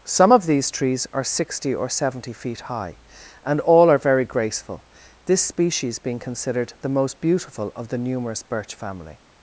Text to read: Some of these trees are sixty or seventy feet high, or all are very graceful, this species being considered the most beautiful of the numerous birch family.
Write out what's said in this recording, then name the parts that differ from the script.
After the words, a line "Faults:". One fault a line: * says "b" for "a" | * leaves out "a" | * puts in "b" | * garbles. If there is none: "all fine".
Some of these trees are sixty or seventy feet high, and all are very graceful, this species being considered the most beautiful of the numerous birch family.
Faults:
* says "and" for "or"